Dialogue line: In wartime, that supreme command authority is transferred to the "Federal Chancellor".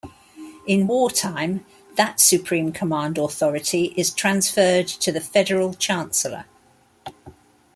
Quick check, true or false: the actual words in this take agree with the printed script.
true